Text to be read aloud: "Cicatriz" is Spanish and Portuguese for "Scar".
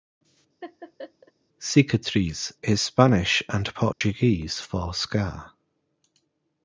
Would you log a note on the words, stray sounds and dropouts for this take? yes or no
yes